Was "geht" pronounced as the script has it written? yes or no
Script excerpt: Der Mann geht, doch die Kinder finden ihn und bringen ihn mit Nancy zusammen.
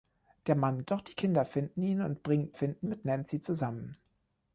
no